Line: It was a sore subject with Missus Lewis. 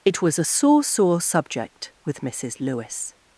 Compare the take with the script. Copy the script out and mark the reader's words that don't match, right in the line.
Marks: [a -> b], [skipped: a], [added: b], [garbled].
It was a sore [added: sore] subject with Missus Lewis.